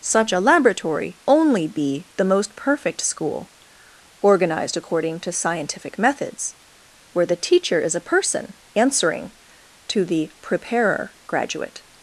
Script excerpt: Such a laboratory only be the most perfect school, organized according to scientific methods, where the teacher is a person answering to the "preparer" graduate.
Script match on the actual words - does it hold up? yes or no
yes